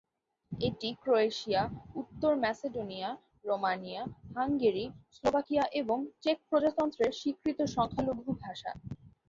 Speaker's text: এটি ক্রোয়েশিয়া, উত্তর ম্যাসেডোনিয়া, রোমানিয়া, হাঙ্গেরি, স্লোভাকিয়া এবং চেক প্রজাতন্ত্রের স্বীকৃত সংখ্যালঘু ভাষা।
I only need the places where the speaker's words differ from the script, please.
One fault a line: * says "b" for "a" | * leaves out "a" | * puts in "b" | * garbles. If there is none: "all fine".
all fine